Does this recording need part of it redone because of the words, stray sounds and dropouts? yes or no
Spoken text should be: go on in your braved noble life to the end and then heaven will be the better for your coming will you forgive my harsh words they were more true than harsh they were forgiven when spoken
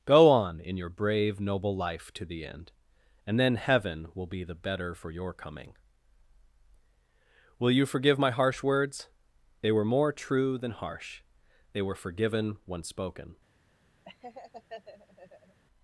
yes